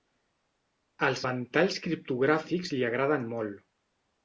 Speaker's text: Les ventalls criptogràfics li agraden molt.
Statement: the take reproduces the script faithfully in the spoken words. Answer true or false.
false